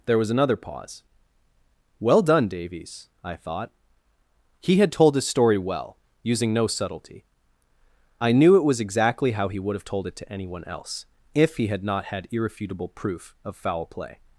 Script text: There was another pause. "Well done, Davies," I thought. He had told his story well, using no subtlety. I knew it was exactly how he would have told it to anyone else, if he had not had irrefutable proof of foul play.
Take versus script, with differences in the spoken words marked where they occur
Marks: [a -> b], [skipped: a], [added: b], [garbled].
There was another pause. "Well done, Davies," I thought. He had told his story well, using no subtlety. I knew it was exactly how he would have told it to anyone else, if he had not had irrefutable proof of foul play.